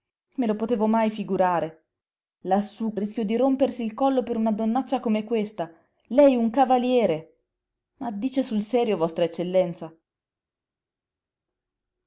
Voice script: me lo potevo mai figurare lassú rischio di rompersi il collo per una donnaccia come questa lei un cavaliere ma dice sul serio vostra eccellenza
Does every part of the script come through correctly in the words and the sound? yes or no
yes